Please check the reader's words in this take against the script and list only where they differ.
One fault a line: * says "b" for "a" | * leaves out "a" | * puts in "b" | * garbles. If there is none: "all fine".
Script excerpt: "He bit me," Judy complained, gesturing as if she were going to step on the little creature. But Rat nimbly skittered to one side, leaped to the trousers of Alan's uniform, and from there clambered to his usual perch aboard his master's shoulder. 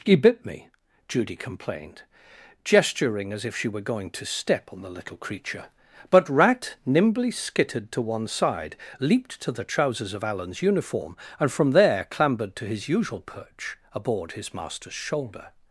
all fine